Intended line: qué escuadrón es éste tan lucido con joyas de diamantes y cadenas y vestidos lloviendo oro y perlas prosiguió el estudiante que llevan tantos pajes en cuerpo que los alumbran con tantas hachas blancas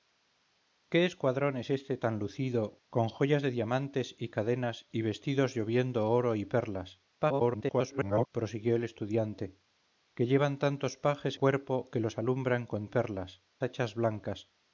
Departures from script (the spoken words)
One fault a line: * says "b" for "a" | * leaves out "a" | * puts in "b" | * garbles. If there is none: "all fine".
* garbles
* leaves out "en"
* says "perlas" for "tantas"